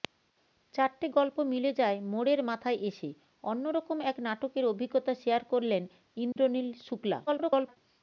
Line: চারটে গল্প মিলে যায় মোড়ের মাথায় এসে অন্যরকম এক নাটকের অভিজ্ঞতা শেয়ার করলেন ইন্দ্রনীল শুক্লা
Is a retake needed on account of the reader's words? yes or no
yes